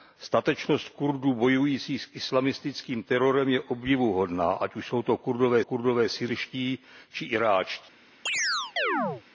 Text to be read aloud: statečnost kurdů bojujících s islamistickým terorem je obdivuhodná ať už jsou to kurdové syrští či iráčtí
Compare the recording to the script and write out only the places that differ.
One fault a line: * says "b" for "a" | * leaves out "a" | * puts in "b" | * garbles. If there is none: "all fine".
* puts in "kurdové"